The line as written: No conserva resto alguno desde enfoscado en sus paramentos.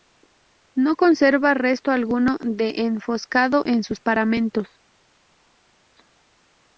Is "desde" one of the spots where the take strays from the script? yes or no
yes